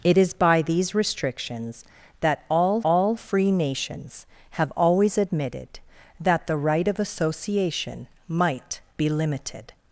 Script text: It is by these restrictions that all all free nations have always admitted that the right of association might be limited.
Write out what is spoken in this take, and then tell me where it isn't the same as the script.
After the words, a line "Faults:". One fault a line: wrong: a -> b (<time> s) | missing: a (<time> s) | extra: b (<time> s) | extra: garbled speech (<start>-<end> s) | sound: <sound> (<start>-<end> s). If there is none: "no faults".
It is by these restrictions that all all free nations have always admitted that the right of association might be limited.
Faults:
no faults